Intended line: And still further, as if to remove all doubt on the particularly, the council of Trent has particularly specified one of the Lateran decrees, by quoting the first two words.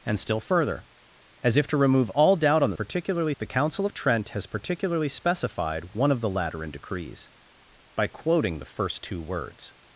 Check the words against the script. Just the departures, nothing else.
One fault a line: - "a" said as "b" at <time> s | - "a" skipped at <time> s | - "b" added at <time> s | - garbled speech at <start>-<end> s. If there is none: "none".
none